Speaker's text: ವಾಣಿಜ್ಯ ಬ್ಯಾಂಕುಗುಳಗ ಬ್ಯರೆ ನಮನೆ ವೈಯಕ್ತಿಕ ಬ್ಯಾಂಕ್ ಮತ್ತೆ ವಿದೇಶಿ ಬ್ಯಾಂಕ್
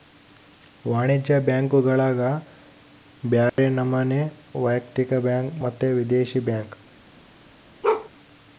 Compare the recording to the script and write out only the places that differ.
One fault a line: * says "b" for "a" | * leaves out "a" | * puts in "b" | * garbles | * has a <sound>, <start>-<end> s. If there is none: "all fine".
* has a dropout, 3.5-3.6 s
* has a bark, 7.8-8.1 s